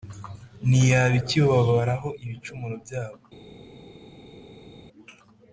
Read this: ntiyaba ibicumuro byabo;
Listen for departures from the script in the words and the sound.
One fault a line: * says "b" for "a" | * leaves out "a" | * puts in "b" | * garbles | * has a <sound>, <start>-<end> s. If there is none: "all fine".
* puts in "ikibabaraho"